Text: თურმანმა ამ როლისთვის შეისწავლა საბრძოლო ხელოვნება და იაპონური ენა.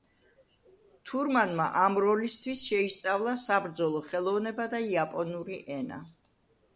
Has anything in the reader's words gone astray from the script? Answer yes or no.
no